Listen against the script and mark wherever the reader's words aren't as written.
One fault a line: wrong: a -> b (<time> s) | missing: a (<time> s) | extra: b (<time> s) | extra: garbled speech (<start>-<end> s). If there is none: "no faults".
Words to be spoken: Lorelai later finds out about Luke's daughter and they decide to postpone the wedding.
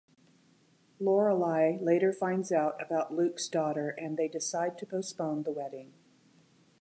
no faults